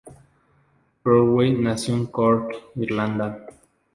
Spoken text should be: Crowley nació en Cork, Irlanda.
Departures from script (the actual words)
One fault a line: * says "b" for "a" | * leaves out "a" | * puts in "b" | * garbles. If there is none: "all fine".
all fine